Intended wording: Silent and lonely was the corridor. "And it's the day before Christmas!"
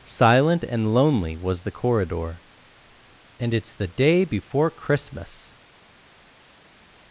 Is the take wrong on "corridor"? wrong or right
right